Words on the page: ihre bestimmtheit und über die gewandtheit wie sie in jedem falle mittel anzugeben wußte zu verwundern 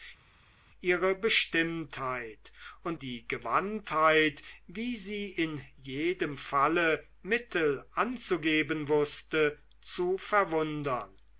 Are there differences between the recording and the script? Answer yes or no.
yes